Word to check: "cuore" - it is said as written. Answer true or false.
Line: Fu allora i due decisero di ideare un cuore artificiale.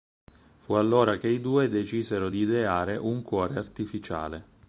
true